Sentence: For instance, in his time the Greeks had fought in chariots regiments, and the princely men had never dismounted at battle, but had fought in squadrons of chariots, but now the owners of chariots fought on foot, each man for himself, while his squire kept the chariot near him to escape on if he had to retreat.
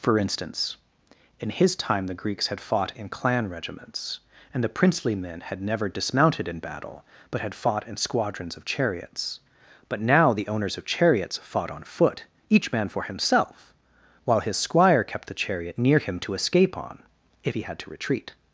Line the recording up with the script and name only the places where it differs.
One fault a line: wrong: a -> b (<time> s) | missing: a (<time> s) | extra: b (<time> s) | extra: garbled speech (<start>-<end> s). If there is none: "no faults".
wrong: chariots -> clan (3.1 s)
wrong: at -> in (6.5 s)